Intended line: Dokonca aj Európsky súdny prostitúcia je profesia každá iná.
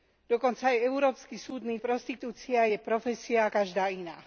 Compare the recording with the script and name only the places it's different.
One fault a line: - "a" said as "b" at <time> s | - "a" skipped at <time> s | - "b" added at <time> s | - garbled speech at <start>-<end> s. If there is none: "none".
none